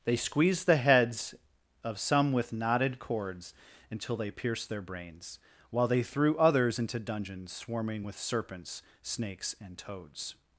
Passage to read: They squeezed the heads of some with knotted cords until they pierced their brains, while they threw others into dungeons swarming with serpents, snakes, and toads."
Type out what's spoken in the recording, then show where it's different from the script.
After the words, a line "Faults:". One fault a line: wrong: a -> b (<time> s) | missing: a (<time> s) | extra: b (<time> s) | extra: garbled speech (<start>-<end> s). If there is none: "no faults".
They squeezed the heads of some with knotted cords until they pierced their brains, while they threw others into dungeons swarming with serpents, snakes, and toads."
Faults:
no faults